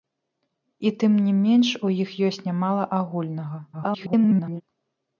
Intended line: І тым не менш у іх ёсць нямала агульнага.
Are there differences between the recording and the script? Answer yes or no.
yes